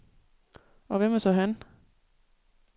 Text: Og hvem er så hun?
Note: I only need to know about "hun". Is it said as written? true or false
false